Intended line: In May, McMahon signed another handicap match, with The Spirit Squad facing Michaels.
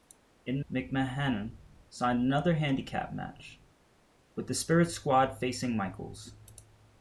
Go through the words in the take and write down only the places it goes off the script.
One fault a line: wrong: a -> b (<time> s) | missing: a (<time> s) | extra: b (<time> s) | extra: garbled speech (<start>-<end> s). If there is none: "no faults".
missing: May (0.7 s)